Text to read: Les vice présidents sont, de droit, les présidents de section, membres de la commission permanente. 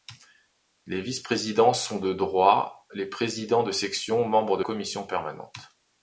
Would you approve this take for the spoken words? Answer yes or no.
no